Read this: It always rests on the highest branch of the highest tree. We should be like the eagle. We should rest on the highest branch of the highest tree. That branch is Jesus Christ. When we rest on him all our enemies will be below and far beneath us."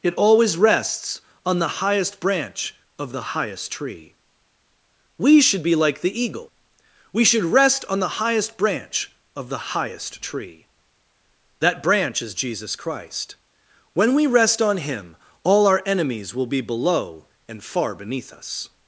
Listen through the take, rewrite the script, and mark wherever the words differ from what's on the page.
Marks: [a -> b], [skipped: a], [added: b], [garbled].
It always rests on the highest branch of the highest tree. We should be like the eagle. We should rest on the highest branch of the highest tree. That branch is Jesus Christ. When we rest on him all our enemies will be below and far beneath us."